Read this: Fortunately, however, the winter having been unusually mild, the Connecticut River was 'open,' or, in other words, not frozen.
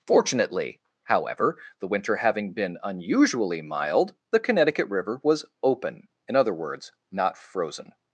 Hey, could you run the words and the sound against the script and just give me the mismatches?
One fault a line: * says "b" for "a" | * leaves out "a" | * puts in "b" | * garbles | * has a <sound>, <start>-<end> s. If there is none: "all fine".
* leaves out "or"